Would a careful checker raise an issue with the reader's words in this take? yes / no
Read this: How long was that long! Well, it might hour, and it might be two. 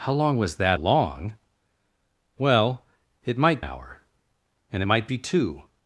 no